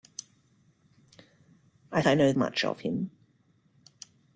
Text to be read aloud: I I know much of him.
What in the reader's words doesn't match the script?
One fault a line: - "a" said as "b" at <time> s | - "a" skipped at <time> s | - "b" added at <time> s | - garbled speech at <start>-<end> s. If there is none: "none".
none